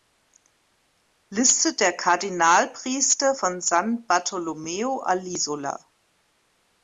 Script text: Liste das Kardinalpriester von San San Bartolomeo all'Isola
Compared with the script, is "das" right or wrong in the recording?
wrong